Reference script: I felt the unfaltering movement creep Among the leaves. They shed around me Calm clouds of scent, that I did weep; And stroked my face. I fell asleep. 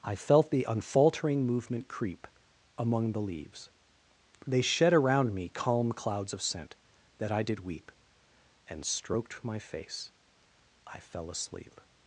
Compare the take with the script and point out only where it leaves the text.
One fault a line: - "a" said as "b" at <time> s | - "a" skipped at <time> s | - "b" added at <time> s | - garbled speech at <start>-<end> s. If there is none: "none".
none